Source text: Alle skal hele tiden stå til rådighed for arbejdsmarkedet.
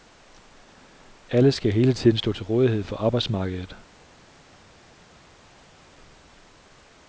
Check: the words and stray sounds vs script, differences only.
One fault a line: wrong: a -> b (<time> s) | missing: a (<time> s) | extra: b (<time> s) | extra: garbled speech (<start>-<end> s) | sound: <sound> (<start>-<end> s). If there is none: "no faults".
no faults